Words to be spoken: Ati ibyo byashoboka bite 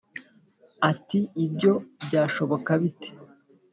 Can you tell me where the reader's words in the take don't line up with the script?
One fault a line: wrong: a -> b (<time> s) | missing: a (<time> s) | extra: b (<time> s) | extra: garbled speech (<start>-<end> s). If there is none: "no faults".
no faults